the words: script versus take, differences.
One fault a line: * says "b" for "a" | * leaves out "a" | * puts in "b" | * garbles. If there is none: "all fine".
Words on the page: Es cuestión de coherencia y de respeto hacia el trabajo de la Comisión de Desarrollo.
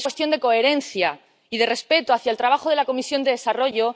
all fine